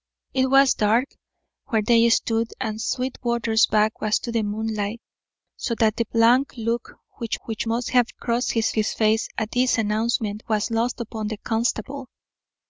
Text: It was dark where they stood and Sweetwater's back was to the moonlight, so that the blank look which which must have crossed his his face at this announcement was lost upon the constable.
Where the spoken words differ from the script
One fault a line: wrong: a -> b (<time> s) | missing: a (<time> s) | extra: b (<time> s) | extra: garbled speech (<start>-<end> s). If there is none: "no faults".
no faults